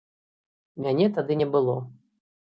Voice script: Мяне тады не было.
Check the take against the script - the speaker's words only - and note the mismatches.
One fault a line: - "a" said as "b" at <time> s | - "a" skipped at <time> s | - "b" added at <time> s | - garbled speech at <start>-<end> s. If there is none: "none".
none